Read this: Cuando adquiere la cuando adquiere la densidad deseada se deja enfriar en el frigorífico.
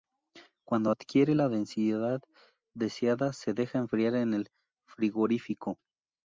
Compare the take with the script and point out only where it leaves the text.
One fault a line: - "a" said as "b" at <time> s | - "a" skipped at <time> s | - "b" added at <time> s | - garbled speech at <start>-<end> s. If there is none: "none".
- "cuando adquiere la" skipped at 1.5 s